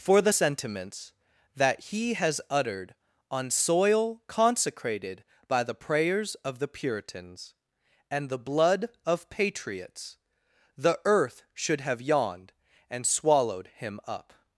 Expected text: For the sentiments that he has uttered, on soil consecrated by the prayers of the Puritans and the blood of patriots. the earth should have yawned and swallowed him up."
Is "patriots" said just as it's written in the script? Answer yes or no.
yes